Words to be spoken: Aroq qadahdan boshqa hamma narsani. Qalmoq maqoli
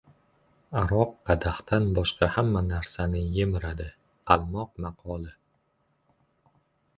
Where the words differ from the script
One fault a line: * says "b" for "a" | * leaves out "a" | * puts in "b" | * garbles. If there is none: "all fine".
* puts in "yemiradi"